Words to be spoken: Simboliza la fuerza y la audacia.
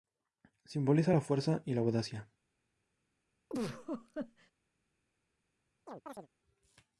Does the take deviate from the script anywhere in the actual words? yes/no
no